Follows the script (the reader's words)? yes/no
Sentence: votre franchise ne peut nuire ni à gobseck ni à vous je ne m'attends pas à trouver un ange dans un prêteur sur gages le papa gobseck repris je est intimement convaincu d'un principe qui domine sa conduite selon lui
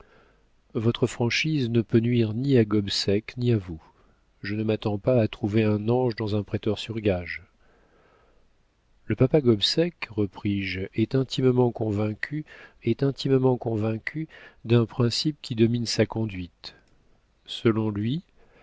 no